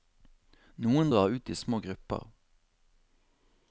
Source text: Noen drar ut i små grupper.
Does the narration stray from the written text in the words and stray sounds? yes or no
no